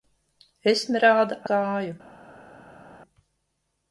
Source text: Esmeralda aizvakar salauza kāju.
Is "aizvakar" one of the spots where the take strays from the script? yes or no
yes